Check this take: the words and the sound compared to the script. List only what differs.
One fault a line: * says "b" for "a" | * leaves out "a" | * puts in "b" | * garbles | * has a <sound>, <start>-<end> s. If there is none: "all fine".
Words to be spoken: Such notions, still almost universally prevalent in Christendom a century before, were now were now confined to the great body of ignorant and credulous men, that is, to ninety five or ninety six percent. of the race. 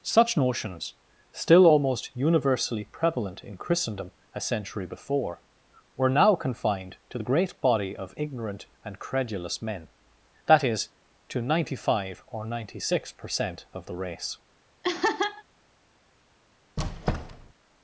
* leaves out "were now"
* has a laugh, 14.8-15.4 s
* has a squeak, 16.8-17.5 s